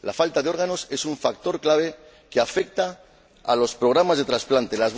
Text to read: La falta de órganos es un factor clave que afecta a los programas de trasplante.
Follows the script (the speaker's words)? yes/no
yes